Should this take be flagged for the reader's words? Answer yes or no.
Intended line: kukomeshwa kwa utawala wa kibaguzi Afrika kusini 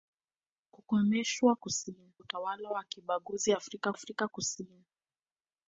yes